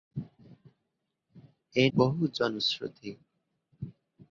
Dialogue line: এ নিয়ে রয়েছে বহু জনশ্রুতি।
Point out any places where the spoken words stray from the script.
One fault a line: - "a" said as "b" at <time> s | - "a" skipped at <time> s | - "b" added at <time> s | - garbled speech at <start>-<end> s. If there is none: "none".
- "নিয়ে রয়েছে" skipped at 1.9 s